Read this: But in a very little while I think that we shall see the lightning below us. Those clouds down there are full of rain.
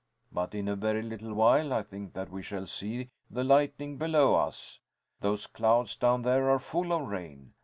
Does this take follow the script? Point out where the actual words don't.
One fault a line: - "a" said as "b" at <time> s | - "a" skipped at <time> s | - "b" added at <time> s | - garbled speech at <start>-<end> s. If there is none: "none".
none